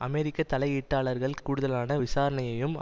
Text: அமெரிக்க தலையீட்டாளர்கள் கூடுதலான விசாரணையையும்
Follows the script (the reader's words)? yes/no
yes